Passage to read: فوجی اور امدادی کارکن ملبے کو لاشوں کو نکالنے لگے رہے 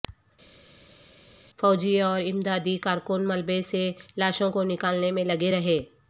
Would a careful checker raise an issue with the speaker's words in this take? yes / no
yes